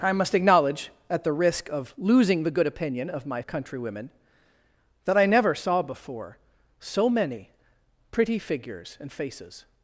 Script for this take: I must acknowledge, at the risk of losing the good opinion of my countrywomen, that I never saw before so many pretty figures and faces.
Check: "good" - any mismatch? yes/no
no